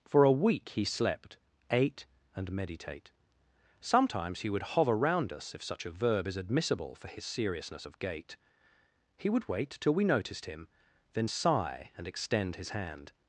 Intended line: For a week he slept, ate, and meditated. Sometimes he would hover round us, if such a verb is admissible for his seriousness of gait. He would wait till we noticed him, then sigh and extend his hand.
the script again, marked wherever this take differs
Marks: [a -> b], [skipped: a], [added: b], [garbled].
For a week he slept, ate, and [meditated. -> meditate] Sometimes he would hover round us, if such a verb is admissible for his seriousness of gait. He would wait till we noticed him, then sigh and extend his hand.